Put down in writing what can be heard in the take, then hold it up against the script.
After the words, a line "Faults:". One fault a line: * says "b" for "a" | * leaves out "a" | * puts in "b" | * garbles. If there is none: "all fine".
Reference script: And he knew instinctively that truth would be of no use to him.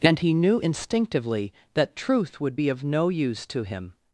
And he knew instinctively that truth would be of no use to him.
Faults:
all fine